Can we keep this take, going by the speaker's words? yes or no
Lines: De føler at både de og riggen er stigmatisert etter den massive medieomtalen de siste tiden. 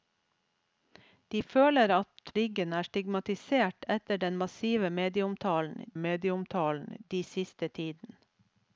no